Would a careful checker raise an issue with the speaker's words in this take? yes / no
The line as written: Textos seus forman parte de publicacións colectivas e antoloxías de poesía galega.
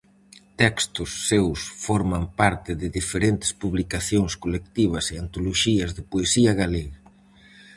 yes